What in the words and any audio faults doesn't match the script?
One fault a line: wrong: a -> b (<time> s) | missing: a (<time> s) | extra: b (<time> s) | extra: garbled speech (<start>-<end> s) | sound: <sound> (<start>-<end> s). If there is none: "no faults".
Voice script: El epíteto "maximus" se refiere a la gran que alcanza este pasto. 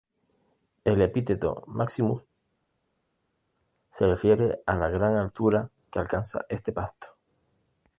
extra: altura (5.1 s)